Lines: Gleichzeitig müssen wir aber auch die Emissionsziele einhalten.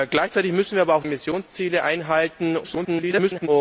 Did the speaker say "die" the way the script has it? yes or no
no